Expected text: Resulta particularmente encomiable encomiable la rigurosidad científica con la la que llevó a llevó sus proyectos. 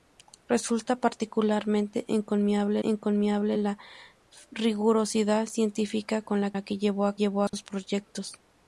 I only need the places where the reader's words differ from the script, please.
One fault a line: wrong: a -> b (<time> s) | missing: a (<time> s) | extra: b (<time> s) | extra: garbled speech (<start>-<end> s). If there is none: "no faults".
no faults